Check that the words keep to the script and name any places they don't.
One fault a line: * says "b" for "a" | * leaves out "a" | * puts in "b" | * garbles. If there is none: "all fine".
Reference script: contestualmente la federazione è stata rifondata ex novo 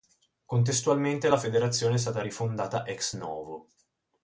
all fine